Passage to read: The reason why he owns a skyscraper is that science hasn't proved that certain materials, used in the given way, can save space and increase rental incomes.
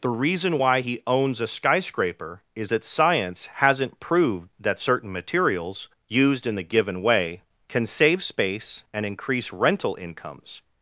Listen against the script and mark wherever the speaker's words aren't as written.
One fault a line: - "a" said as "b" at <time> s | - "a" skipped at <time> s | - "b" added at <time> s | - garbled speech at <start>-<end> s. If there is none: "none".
none